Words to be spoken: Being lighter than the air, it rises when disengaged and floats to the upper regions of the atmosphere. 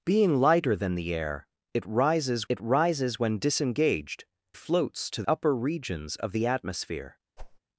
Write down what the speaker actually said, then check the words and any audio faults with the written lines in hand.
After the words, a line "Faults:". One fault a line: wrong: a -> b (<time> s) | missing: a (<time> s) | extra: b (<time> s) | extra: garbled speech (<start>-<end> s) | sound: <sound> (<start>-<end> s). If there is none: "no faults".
Being lighter than the air, it rises it rises when disengaged floats to upper regions of the atmosphere.
Faults:
extra: it rises (2.5 s)
missing: and (4.2 s)
missing: the (5.2 s)
sound: whoosh (7.4-7.6 s)